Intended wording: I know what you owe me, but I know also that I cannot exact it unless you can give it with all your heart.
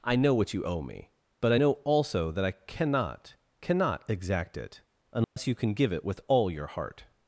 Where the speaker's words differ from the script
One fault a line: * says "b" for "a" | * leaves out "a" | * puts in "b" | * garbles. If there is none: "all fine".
* puts in "cannot"